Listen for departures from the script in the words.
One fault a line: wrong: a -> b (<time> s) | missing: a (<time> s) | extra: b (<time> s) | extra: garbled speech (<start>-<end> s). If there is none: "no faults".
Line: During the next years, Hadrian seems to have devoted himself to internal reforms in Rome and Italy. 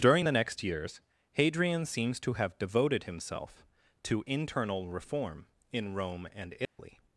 wrong: reforms -> reform (4.9 s)